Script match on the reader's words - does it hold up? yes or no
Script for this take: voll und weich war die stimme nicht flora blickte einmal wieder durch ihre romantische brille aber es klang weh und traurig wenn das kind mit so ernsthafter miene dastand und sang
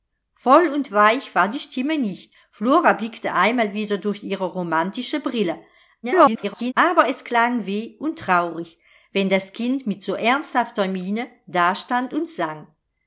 no